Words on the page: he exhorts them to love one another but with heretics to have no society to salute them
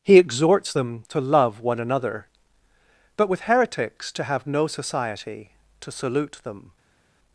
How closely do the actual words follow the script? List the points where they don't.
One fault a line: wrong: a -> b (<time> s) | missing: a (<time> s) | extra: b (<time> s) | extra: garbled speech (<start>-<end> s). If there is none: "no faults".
no faults